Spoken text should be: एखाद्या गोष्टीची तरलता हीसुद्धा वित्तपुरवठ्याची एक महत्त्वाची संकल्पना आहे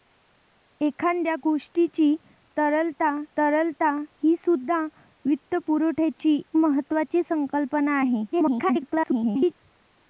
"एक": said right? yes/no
no